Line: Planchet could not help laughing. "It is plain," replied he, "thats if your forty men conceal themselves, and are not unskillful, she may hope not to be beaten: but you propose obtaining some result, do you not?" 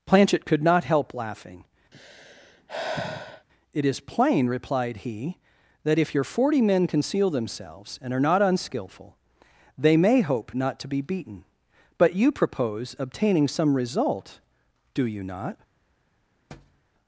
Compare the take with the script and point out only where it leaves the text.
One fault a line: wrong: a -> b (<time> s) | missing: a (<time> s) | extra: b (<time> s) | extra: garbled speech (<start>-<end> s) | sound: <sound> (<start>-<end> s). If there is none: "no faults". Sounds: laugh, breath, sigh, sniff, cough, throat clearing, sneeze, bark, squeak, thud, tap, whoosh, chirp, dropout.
sound: sigh (1.9-3.5 s)
wrong: thats -> that (5.8 s)
wrong: she -> they (9.8 s)
sound: thud (16.5-16.8 s)